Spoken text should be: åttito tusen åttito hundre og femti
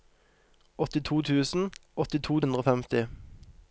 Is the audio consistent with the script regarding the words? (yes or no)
yes